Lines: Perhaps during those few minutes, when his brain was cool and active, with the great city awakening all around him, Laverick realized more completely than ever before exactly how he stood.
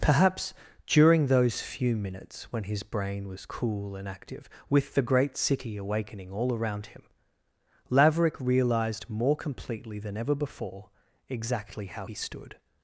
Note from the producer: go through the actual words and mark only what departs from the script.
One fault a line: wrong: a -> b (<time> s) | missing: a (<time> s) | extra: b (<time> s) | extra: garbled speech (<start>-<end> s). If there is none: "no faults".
no faults